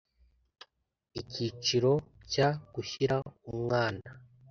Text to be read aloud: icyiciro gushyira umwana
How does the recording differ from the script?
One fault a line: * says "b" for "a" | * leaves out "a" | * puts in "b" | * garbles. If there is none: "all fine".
* puts in "cya"